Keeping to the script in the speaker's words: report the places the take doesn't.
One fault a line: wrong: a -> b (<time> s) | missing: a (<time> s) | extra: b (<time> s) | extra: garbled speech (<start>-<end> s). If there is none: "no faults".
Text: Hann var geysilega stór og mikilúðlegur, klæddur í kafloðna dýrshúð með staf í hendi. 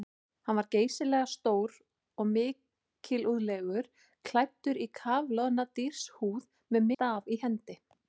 no faults